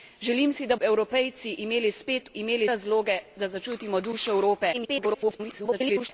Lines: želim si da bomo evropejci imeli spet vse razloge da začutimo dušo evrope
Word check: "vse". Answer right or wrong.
wrong